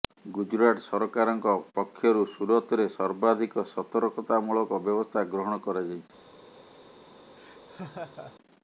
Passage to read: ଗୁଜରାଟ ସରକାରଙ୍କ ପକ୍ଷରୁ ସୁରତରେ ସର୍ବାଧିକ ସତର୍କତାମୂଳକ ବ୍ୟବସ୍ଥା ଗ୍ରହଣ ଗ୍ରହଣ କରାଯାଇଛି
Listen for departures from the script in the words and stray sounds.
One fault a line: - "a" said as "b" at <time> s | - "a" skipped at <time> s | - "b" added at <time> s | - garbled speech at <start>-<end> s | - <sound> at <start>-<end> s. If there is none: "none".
- "ଗ୍ରହଣ" skipped at 5.7 s
- laugh at 7.4-8.3 s